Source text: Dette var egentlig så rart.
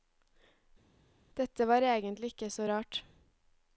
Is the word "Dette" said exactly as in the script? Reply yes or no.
yes